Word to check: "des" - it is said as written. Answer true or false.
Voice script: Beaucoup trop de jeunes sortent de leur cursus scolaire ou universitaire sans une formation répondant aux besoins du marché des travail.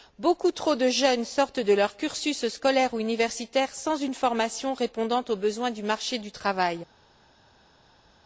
false